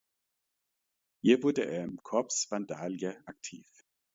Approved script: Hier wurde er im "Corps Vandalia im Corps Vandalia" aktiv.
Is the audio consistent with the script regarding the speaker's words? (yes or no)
no